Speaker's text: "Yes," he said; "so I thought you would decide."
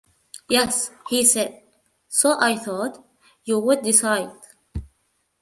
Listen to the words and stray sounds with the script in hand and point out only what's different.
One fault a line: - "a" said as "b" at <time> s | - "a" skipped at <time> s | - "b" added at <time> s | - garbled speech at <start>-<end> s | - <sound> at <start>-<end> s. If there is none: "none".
none